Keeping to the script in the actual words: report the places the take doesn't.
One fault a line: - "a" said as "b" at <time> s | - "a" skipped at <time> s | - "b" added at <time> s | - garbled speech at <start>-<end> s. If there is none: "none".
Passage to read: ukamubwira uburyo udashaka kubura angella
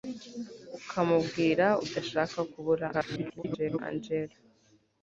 - "uburyo" skipped at 1.6 s
- garbled speech at 2.9-3.8 s